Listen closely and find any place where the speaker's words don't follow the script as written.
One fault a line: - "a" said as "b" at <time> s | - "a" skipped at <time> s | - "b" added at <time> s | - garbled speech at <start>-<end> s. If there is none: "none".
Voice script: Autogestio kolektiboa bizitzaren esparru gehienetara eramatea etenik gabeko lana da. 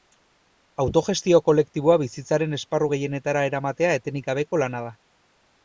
none